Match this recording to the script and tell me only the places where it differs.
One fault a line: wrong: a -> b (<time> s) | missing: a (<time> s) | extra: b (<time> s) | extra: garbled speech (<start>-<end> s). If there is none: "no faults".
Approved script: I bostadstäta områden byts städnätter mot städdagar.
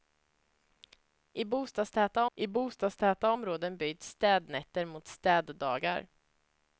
extra: I bostadstäta (2.3 s)